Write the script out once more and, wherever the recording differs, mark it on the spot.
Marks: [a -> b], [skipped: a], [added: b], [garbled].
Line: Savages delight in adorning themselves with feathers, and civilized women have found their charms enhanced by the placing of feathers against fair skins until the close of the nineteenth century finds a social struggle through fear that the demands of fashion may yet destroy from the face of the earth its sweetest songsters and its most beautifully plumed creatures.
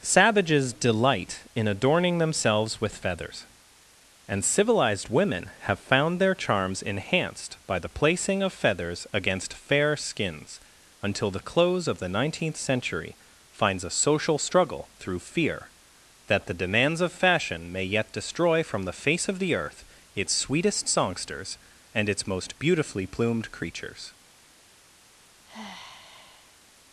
Savages delight in adorning themselves with feathers, and civilized women have found their charms enhanced by the placing of feathers against fair skins until the close of the nineteenth century finds a social struggle through fear that the demands of fashion may yet destroy from the face of the earth its sweetest songsters and its most beautifully plumed creatures.